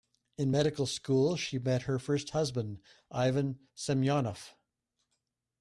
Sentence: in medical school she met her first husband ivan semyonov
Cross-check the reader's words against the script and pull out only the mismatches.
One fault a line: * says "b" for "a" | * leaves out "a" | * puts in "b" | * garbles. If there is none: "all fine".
all fine